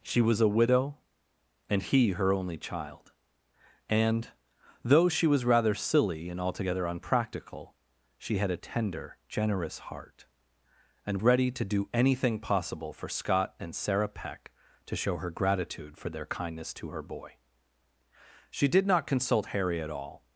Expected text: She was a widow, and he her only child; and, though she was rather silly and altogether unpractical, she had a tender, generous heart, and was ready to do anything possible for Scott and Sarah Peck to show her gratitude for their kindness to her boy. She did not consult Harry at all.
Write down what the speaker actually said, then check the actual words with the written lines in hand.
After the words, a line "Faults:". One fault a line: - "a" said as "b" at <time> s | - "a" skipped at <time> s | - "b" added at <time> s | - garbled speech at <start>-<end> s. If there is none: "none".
She was a widow, and he her only child; and, though she was rather silly and altogether unpractical, she had a tender, generous heart, and ready to do anything possible for Scott and Sarah Peck to show her gratitude for their kindness to her boy. She did not consult Harry at all.
Faults:
- "was" skipped at 11.2 s